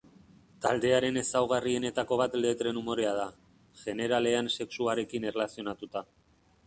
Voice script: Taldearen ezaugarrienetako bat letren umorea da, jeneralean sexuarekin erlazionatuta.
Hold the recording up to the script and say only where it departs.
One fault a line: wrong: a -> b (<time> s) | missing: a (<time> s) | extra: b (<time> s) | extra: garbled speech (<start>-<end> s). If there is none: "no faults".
no faults